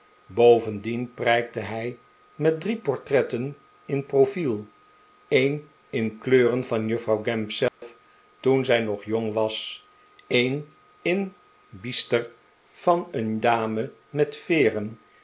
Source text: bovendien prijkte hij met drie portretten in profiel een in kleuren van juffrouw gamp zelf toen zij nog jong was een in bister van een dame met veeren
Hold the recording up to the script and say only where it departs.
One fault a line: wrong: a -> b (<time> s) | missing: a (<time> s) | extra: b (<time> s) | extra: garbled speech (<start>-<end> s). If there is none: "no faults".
no faults